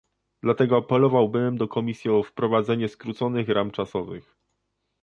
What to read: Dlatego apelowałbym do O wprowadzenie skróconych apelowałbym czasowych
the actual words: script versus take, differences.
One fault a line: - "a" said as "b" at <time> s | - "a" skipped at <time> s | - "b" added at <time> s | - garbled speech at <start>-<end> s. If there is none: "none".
- "Komisji" added at 1.7 s
- "apelowałbym" said as "ram" at 3.5 s